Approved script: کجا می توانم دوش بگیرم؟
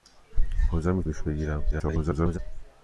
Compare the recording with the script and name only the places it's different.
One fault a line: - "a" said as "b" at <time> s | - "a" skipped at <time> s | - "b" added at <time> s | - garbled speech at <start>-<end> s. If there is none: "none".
- "توانم" skipped at 1.0 s
- garbled speech at 1.7-2.4 s